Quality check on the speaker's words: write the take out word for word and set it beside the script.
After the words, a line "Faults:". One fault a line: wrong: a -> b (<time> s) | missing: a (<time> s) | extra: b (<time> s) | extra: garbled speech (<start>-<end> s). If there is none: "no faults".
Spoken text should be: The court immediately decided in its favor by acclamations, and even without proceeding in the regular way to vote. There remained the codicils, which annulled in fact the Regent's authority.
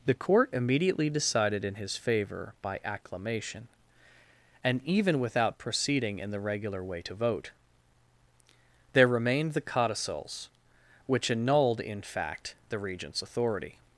The court immediately decided in his favor by acclamation, and even without proceeding in the regular way to vote. There remained the codicils, which annulled in fact the Regent's authority.
Faults:
wrong: its -> his (1.8 s)
wrong: acclamations -> acclamation (2.8 s)